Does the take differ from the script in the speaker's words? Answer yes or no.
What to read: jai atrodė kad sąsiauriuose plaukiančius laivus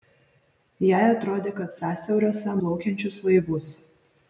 no